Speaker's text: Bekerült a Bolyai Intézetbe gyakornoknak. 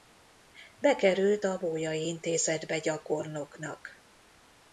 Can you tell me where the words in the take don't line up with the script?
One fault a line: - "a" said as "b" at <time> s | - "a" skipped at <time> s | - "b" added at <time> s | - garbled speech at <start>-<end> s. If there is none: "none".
none